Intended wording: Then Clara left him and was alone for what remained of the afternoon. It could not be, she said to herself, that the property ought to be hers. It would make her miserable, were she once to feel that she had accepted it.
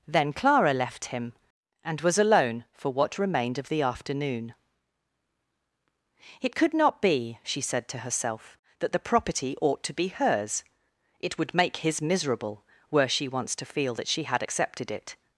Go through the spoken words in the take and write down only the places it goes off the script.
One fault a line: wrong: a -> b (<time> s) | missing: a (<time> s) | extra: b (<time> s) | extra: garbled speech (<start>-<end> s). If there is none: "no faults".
wrong: her -> his (11.8 s)